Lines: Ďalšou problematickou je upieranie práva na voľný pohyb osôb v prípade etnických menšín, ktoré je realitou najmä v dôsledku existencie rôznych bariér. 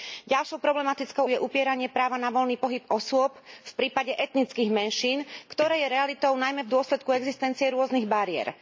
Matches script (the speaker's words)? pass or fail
pass